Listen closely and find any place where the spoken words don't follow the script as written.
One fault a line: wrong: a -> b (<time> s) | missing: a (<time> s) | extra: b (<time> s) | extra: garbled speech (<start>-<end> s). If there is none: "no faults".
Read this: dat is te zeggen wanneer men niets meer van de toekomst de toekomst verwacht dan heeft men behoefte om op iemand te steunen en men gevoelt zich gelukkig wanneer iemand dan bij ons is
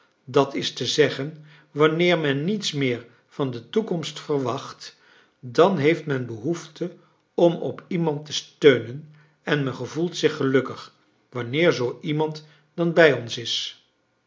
missing: de toekomst (4.2 s)
extra: zoo (11.7 s)